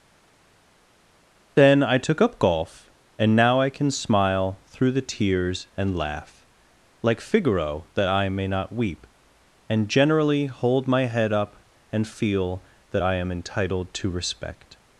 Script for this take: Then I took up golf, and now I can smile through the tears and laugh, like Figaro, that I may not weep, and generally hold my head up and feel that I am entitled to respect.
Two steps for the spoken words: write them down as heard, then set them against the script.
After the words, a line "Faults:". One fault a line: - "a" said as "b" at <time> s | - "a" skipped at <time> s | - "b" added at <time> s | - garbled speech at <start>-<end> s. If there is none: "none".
Then I took up golf, and now I can smile through the tears and laugh, like Figaro, that I may not weep, and generally hold my head up and feel that I am entitled to respect.
Faults:
none